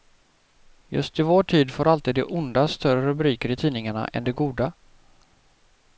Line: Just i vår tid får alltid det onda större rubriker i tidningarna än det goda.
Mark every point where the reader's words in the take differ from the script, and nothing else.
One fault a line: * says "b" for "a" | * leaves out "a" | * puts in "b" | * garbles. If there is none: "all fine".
all fine